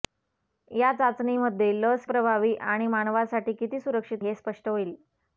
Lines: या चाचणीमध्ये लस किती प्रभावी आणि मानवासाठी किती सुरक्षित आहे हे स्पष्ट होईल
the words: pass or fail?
fail